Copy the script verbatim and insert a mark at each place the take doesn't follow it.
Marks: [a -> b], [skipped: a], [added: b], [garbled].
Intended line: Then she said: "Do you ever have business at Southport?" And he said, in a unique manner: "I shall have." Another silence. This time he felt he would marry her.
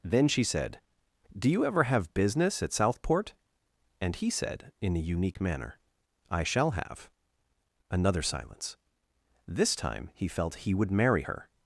Then she said: "Do you ever have business at Southport?" And he said, in a unique manner: "I shall have." Another silence. This time he felt he would marry her.